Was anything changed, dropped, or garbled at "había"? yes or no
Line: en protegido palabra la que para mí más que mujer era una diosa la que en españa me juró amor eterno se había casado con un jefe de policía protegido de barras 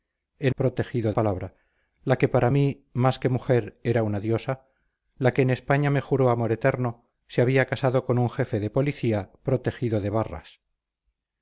no